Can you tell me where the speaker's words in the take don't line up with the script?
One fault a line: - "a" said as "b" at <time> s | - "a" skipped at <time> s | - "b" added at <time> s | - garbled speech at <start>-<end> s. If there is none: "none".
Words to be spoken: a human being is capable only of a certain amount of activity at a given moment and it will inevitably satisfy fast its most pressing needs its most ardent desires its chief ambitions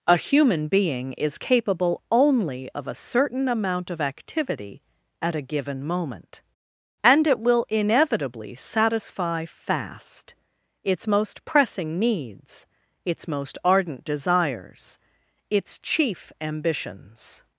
none